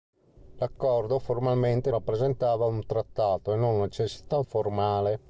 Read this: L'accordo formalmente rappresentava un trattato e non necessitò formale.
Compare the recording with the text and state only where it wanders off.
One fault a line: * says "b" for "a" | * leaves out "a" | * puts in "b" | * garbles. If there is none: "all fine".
all fine